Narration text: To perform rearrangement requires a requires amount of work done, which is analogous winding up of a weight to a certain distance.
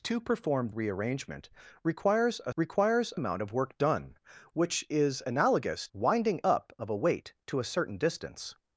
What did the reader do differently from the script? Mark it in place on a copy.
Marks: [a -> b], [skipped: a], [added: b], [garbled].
To perform rearrangement requires a requires amount of work done, which is analogous winding up of a weight to a certain distance.